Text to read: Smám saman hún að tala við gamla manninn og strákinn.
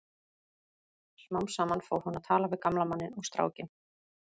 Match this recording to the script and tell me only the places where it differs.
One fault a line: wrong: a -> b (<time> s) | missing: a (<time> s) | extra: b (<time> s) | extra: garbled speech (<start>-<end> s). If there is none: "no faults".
extra: fór (1.9 s)